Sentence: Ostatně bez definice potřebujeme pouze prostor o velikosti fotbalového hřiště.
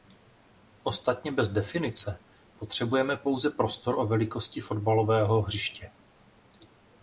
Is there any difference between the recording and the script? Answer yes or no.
no